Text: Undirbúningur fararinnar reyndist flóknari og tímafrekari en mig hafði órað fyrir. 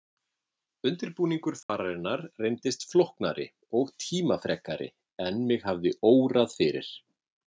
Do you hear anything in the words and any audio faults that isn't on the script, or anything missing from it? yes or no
yes